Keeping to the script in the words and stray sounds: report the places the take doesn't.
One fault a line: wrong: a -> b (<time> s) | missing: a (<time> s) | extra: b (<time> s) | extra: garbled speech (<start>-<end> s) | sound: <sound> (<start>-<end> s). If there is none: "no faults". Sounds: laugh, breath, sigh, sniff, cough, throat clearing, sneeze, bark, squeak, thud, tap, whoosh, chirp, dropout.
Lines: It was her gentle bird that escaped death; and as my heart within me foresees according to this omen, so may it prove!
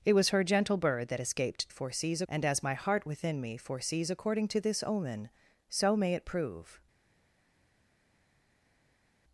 wrong: death -> foresees (1.7 s)